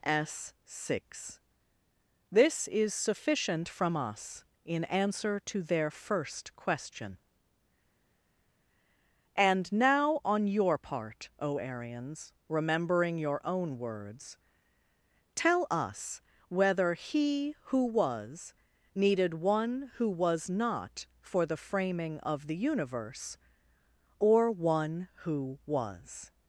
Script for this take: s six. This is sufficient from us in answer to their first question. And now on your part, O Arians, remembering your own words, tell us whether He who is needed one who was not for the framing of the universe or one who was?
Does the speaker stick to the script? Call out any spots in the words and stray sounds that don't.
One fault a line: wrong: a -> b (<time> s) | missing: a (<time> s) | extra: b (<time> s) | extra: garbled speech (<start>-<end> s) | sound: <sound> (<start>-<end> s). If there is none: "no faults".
wrong: is -> was (17.9 s)